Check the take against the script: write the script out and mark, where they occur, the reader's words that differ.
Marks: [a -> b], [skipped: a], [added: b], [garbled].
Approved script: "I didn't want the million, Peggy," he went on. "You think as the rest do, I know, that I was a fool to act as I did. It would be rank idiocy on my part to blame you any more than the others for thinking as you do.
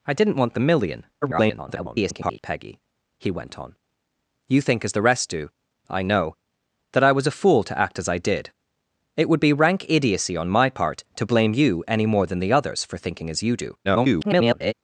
"I didn't want the million, [garbled] Peggy," he went on. "You think as the rest do, I know, that I was a fool to act as I did. It would be rank idiocy on my part to blame you any more than the others for thinking as you do. [garbled]